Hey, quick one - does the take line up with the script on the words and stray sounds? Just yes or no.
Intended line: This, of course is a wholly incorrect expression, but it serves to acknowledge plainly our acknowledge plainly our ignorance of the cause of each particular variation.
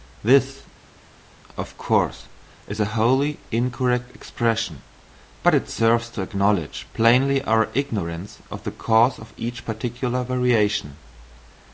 no